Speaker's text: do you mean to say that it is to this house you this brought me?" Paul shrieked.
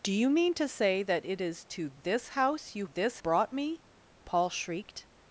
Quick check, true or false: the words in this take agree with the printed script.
true